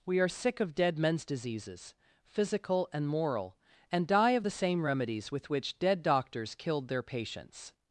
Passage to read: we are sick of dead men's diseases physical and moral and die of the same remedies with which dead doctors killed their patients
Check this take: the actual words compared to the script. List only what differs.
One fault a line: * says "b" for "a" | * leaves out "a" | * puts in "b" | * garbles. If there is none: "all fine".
all fine